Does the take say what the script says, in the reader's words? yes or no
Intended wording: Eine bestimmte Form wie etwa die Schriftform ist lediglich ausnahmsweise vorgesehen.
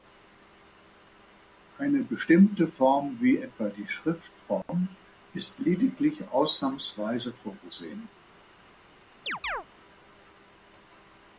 yes